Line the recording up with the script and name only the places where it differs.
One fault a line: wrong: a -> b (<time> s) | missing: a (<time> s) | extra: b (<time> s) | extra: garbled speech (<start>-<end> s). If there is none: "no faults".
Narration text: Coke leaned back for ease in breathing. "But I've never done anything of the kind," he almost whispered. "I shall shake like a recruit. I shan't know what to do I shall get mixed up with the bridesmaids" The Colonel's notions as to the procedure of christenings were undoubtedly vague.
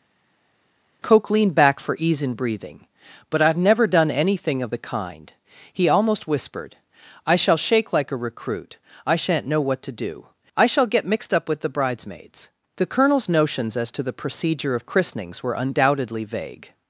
no faults